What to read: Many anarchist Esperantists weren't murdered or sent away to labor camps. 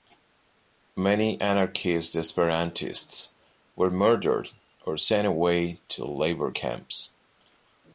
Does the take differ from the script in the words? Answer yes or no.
yes